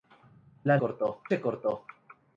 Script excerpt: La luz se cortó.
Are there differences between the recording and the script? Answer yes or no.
yes